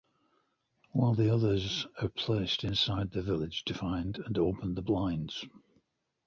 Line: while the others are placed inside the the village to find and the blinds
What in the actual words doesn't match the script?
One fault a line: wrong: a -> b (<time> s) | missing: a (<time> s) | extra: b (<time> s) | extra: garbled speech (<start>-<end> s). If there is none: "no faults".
missing: the (3.2 s)
extra: open (4.4 s)